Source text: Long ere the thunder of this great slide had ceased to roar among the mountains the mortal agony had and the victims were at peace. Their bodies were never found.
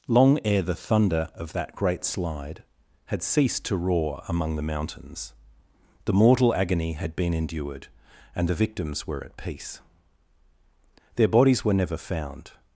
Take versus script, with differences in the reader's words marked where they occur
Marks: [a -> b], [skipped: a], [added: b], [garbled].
Long ere the thunder of [this -> that] great slide had ceased to roar among the mountains the mortal agony had [added: been endured] and the victims were at peace. Their bodies were never found.